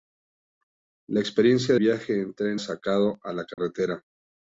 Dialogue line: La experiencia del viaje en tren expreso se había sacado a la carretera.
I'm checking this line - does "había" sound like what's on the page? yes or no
no